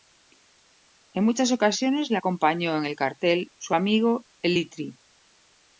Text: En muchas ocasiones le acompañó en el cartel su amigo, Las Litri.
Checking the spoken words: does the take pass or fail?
fail